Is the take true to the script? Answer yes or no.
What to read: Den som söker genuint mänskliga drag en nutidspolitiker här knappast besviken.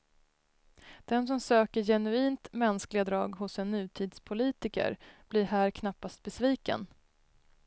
no